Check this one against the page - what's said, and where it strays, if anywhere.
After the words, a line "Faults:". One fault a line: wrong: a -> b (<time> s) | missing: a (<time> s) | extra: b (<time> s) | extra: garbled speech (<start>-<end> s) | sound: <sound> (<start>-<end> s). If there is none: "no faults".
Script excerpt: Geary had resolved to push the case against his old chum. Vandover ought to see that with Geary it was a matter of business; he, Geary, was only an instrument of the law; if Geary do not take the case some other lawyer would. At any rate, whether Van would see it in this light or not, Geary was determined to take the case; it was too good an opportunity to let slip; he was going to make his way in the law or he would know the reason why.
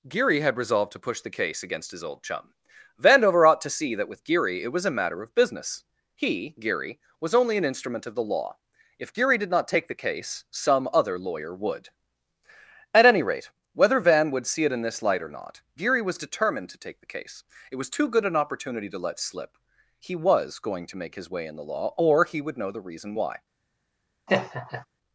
Geary had resolved to push the case against his old chum. Vandover ought to see that with Geary it was a matter of business; he, Geary, was only an instrument of the law; if Geary did not take the case some other lawyer would. At any rate, whether Van would see it in this light or not, Geary was determined to take the case; it was too good an opportunity to let slip; he was going to make his way in the law or he would know the reason why.
Faults:
wrong: do -> did (9.4 s)
sound: laugh (24.3-24.9 s)